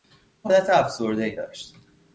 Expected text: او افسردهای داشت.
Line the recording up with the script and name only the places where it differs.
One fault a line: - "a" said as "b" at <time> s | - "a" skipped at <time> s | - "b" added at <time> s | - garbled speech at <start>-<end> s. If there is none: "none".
- "حالت" added at 0.5 s